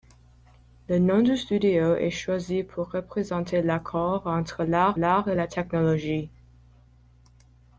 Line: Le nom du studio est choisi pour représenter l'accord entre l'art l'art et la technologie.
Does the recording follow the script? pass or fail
pass